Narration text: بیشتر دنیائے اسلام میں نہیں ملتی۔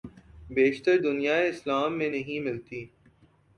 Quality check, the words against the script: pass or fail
pass